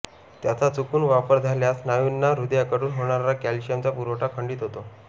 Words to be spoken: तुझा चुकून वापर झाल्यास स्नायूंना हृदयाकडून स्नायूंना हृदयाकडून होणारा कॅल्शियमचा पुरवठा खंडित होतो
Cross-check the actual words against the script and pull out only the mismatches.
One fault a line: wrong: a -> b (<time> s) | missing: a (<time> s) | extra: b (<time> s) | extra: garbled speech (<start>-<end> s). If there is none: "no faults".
wrong: तुझा -> त्याचा (0.4 s)
missing: स्नायूंना हृदयाकडून (2.9 s)